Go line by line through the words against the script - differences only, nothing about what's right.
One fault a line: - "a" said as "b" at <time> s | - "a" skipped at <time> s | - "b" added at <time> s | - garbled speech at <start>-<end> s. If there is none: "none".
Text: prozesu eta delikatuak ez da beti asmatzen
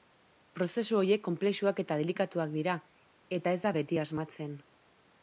- "horiek konplexuak" added at 1.0 s
- "dira eta" added at 2.5 s